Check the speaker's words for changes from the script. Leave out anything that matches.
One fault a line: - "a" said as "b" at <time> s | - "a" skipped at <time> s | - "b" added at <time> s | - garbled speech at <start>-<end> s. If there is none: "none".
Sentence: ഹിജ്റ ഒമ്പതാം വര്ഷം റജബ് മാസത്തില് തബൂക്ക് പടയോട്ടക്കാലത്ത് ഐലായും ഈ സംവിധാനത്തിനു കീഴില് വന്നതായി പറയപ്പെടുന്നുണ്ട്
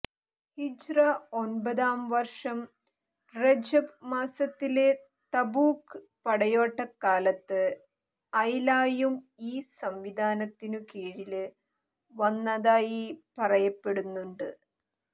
none